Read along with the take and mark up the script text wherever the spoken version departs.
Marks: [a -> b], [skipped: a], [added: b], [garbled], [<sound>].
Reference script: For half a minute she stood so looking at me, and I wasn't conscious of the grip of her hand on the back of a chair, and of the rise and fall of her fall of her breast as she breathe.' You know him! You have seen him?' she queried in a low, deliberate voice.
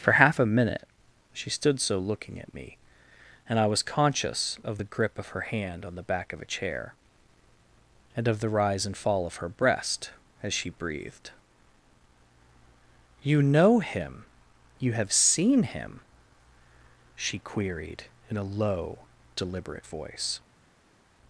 For half a minute she stood so looking at me, and I [wasn't -> was] conscious of the grip of her hand on the back of a chair, and of the rise and fall of her [skipped: fall of her] breast as she [breathe.' -> breathed] You know him! You have seen him?' she queried in a low, deliberate voice.